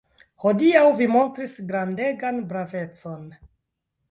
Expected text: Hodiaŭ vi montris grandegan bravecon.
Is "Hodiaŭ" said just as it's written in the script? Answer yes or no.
yes